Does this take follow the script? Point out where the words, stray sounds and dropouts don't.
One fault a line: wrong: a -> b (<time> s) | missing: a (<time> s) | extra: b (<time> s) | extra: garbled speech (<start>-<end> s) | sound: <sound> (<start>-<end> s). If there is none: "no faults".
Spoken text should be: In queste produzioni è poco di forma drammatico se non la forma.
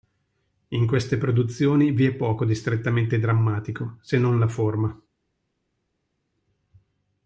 extra: vi (1.9 s)
wrong: forma -> strettamente (2.5 s)